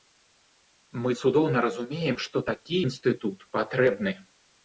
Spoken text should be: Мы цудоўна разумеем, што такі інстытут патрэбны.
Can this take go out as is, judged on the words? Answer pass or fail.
pass